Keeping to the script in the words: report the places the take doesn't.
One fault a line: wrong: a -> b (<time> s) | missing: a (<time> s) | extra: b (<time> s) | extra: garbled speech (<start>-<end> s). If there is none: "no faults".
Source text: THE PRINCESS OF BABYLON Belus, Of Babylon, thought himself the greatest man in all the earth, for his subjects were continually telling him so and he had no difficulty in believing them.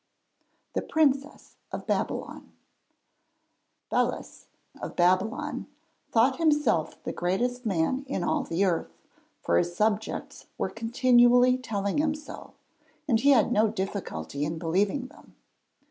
no faults